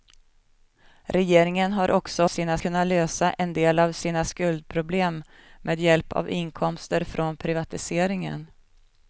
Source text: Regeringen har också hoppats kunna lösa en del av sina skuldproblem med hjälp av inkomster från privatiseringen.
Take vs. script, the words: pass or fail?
fail